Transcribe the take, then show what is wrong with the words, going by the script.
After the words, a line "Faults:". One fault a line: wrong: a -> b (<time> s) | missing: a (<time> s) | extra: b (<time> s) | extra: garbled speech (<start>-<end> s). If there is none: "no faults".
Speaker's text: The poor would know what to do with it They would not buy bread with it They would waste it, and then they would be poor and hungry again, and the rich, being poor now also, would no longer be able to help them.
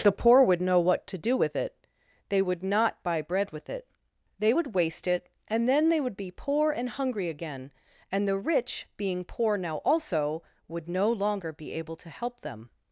The poor would know what to do with it They would not buy bread with it They would waste it, and then they would be poor and hungry again, and the rich, being poor now also, would no longer be able to help them.
Faults:
no faults